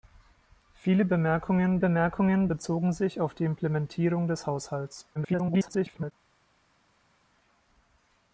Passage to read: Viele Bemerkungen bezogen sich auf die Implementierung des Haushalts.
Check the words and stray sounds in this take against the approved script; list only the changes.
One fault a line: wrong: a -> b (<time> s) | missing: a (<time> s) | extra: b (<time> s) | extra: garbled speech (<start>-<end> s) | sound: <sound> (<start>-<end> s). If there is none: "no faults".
extra: Bemerkungen (1.8 s)
extra: garbled speech (5.2-6.1 s)